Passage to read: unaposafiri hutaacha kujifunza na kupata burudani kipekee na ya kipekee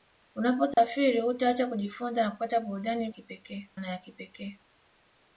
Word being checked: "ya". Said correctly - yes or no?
yes